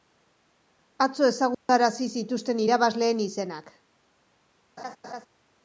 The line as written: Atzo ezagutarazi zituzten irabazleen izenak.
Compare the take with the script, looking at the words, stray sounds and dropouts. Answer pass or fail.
fail